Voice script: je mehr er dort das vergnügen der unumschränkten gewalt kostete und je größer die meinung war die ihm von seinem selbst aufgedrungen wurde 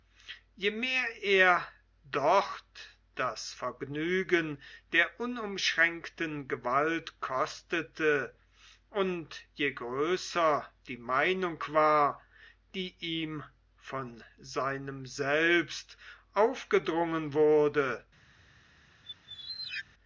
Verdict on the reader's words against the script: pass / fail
pass